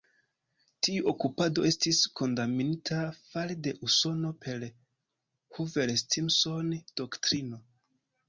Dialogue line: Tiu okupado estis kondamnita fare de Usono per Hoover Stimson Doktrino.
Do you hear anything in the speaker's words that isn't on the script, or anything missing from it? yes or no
no